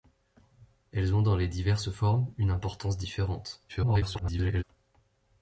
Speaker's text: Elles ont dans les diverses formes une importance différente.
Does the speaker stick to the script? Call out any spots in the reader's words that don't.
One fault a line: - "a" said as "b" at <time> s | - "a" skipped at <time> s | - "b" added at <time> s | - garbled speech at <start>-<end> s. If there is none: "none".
- garbled speech at 3.7-4.6 s